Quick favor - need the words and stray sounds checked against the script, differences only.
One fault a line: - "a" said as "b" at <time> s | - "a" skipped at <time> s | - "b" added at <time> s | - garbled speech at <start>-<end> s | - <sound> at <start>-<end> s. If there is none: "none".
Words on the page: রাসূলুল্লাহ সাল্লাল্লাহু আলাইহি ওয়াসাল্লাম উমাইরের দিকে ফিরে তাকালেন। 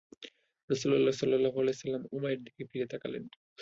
none